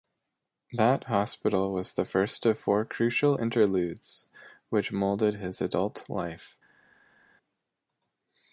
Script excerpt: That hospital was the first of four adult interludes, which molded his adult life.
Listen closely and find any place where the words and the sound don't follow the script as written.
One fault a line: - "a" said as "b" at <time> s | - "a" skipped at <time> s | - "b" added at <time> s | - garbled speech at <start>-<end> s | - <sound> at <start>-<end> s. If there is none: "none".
- "adult" said as "crucial" at 2.9 s